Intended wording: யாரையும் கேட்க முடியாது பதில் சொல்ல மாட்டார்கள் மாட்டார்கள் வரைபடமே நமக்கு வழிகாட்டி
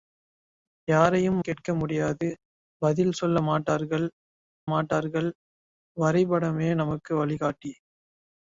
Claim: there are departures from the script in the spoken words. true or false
false